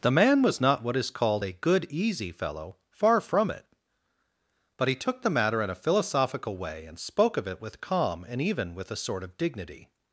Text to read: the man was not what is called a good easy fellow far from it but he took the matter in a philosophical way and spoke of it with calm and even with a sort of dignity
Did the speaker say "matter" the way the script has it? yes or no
yes